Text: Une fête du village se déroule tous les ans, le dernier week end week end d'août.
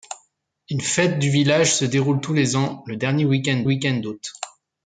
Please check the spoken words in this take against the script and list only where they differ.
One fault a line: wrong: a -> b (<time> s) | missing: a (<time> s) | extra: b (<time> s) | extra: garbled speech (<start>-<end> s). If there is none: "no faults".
no faults